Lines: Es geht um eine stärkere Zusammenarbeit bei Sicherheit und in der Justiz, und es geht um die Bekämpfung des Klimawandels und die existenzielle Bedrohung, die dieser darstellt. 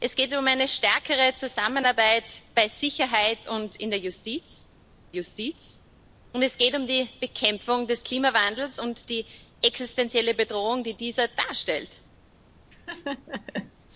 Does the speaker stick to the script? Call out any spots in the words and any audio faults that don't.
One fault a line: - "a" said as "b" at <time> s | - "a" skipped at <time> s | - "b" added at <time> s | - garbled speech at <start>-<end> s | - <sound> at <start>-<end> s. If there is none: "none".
- "Justiz" added at 5.1 s
- laugh at 12.7-13.7 s